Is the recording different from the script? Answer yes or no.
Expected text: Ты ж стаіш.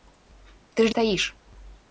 no